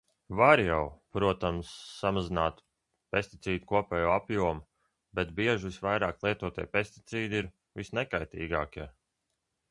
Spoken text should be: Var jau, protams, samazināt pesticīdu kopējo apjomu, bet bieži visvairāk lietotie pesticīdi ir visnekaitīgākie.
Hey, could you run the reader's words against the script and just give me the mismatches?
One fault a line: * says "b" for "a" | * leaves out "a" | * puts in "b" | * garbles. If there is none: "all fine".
all fine